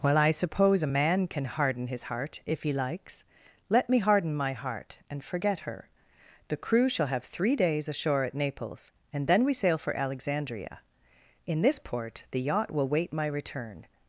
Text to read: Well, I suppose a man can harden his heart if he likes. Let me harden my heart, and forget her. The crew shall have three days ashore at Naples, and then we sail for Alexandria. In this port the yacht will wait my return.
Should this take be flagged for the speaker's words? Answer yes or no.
no